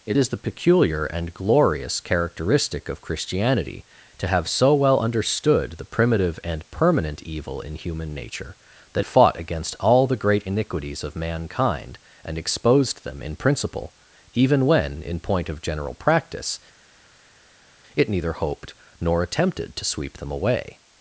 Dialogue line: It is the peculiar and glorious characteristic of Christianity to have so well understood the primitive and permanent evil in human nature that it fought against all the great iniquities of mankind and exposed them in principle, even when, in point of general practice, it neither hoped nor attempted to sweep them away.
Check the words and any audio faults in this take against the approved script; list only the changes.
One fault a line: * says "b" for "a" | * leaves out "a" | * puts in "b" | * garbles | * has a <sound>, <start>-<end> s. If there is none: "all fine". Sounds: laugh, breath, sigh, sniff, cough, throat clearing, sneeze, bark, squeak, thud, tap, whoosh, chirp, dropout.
* leaves out "it"